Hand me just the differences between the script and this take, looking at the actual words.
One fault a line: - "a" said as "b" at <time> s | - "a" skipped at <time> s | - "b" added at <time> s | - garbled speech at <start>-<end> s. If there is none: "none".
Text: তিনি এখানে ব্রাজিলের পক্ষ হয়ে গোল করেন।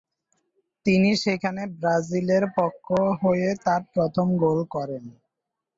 - "এখানে" said as "সেখানে" at 1.2 s
- "তার প্রথম" added at 3.7 s